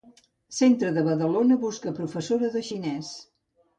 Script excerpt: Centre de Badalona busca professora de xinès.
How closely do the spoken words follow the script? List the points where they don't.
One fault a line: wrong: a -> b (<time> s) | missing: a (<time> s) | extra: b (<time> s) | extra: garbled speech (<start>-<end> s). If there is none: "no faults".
no faults